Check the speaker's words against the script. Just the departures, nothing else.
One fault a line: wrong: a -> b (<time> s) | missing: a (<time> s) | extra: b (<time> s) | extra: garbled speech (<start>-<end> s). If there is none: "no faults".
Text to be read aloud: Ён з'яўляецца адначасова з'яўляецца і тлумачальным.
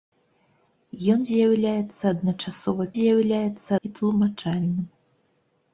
no faults